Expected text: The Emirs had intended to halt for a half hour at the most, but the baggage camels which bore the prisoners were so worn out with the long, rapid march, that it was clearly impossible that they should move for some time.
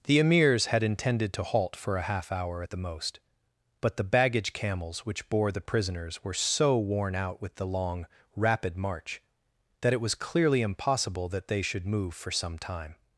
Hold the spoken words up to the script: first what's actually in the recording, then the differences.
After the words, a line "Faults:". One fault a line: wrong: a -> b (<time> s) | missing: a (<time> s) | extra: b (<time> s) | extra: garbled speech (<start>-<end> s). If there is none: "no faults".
The Emirs had intended to halt for a half hour at the most, but the baggage camels which bore the prisoners were so worn out with the long, rapid march, that it was clearly impossible that they should move for some time.
Faults:
no faults